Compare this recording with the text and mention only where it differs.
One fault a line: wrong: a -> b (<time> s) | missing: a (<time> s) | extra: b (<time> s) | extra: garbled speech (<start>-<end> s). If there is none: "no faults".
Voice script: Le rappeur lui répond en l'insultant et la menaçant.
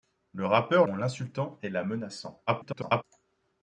missing: lui répond (0.9 s)
extra: garbled speech (2.5-3.0 s)